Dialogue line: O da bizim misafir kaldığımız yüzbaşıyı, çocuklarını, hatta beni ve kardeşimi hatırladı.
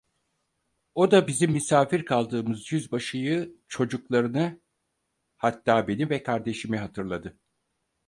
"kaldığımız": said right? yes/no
yes